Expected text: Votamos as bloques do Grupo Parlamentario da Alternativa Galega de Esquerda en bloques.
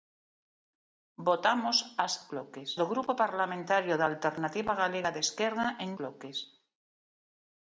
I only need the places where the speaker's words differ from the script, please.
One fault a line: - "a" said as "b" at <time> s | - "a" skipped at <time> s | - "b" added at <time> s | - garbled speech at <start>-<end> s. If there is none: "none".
none